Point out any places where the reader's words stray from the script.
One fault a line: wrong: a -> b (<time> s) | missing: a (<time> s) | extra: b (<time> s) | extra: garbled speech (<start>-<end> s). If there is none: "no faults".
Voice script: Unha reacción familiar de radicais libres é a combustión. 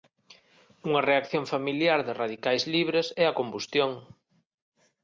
no faults